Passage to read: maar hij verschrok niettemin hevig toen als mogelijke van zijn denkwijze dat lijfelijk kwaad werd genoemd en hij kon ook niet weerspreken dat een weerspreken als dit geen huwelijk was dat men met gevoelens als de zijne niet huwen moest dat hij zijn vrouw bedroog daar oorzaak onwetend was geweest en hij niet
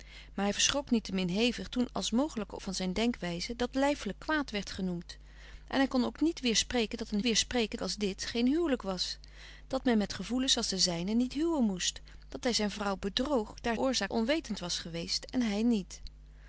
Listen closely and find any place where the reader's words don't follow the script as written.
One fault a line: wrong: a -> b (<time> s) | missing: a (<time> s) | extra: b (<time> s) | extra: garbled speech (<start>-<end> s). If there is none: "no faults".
no faults